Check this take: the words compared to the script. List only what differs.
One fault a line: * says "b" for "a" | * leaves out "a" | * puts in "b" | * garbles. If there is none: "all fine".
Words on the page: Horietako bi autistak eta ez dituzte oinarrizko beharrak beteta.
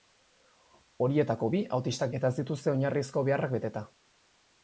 all fine